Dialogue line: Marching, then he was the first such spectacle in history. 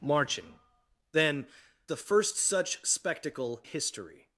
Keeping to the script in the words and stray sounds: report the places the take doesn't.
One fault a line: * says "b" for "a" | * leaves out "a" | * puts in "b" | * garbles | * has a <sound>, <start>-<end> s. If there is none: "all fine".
* leaves out "he was"
* leaves out "in"